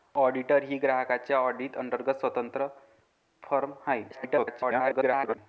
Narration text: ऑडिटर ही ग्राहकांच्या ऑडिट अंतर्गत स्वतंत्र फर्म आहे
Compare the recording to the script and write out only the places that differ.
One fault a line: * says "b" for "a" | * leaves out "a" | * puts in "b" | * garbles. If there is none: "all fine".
* garbles